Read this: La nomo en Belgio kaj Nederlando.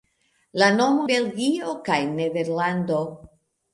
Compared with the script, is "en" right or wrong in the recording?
wrong